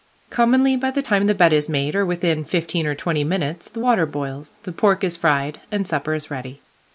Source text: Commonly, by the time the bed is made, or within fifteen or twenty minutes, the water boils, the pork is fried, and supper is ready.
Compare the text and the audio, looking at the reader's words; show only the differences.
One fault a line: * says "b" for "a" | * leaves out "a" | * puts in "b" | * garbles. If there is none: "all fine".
all fine